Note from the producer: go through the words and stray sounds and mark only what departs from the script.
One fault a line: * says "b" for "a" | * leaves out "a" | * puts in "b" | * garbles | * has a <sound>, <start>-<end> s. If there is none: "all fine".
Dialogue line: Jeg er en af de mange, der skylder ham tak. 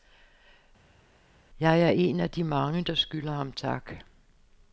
all fine